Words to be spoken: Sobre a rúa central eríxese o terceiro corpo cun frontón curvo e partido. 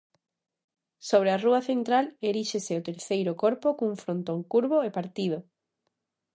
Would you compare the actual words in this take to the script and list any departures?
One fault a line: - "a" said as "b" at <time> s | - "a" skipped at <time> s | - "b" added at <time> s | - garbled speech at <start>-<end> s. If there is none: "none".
none